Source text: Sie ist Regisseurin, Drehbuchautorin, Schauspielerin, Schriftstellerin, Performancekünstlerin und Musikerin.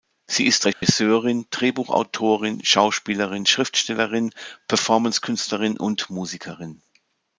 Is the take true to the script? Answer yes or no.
yes